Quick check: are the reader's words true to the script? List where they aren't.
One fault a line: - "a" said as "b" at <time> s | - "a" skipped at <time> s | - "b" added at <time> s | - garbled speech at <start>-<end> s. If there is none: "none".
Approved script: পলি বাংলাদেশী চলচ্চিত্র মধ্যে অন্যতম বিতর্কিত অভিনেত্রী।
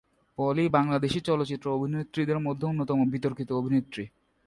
- "অভিনেত্রীদের" added at 1.7 s